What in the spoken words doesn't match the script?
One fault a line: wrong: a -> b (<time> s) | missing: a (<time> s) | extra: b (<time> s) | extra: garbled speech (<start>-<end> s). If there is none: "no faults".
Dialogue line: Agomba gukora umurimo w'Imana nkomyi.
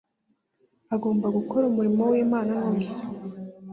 no faults